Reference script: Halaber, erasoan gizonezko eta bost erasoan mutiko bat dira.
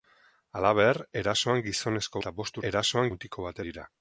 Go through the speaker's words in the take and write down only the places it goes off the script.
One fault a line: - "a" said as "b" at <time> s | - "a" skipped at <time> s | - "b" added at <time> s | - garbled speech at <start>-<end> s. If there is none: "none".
none